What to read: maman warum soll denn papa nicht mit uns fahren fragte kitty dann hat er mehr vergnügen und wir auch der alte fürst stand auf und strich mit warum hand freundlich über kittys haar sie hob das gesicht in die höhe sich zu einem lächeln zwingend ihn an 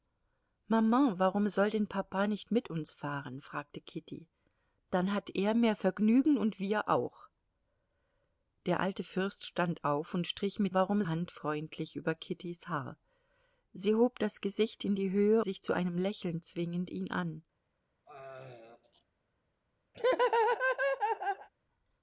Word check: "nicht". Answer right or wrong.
right